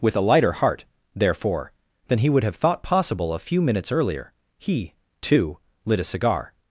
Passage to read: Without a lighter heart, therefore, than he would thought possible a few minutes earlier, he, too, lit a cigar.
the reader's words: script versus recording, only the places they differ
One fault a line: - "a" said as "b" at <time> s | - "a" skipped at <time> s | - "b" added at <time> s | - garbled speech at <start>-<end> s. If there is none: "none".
- "Without" said as "With" at 0.0 s
- "have" added at 2.4 s